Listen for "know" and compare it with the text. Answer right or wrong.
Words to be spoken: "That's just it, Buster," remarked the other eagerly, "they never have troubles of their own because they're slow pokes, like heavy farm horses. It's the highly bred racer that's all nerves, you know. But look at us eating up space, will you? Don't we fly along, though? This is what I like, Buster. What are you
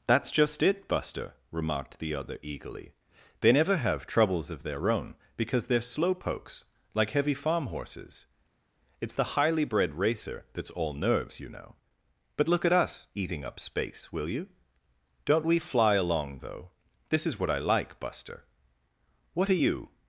right